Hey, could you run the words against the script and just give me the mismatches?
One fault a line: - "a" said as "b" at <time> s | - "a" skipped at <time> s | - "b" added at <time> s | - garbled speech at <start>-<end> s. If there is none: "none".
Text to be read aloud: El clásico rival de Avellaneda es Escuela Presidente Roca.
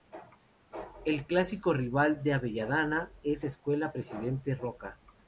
none